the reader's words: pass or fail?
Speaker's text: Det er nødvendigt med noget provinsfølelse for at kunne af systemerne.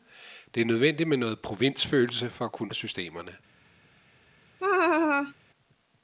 pass